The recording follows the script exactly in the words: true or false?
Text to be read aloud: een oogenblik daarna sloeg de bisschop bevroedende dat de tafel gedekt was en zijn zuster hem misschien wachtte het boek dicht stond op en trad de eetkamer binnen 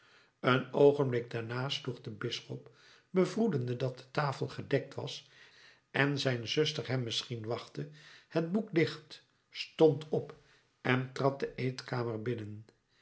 true